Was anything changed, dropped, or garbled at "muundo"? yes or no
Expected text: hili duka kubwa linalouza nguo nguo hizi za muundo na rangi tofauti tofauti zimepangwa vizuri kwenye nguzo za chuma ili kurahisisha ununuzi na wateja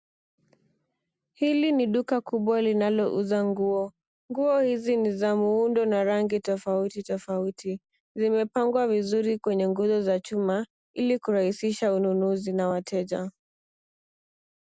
no